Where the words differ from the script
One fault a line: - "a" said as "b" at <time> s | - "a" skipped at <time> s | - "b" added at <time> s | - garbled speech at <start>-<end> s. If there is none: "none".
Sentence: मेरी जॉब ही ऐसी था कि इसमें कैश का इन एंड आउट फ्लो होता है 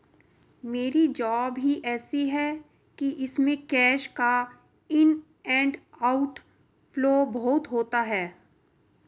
- "था" said as "है" at 2.3 s
- "बहुत" added at 7.2 s